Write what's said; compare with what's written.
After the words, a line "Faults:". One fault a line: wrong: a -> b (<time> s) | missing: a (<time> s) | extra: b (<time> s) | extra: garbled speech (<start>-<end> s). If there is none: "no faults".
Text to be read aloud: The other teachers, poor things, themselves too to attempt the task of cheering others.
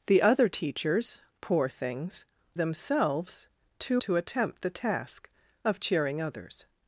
The other teachers, poor things, themselves too to attempt the task of cheering others.
Faults:
no faults